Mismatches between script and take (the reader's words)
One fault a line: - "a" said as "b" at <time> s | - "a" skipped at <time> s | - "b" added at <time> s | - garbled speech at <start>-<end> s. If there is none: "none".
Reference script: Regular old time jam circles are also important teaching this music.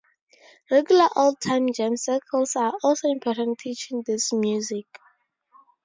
none